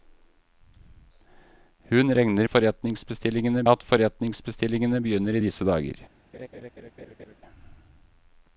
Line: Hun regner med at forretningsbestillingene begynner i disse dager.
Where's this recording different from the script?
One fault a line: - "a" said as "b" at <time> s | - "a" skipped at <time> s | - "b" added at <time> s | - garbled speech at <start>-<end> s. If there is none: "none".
- "med" said as "forretningsbestillingene" at 2.5 s